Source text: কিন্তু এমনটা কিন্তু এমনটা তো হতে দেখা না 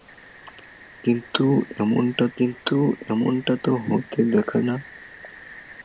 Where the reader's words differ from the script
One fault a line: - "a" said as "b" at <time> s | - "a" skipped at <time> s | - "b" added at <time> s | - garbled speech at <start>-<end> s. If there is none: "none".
none